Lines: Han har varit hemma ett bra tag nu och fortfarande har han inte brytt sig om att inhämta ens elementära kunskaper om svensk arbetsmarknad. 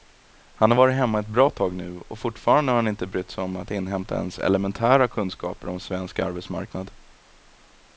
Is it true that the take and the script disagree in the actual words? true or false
false